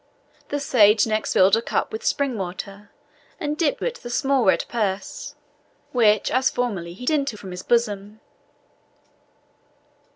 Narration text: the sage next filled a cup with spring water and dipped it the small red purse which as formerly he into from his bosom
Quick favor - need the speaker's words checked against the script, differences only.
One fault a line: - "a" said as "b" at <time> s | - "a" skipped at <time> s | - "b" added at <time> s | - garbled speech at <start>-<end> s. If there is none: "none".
none